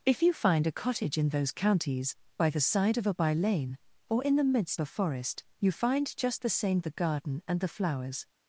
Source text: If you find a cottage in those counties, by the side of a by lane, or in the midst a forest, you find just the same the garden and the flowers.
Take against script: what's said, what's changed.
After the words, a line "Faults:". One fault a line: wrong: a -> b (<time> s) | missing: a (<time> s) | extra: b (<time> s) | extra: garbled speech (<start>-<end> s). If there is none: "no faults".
If you find a cottage in those counties, by the side of a by lane, or in the midst a forest, you find just the same the garden and the flowers.
Faults:
no faults